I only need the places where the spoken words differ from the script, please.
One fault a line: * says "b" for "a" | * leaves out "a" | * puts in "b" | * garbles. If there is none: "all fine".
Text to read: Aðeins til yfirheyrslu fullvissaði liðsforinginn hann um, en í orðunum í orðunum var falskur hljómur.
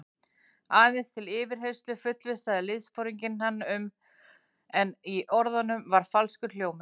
* leaves out "í orðunum"